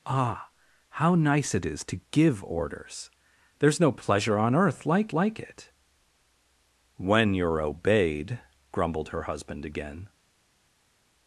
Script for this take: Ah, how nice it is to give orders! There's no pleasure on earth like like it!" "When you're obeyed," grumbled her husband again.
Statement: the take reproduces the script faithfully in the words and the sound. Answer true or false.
true